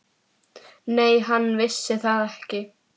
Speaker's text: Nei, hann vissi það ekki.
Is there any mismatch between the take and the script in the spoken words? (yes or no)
no